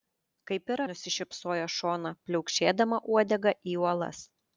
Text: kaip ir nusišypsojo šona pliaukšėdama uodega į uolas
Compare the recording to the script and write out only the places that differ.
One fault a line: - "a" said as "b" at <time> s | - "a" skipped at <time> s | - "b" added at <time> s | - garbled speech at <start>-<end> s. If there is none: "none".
none